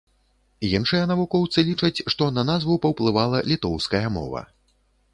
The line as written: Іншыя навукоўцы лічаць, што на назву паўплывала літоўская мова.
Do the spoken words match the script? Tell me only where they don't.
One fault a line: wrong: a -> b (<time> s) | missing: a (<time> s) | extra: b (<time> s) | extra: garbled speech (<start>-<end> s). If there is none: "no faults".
no faults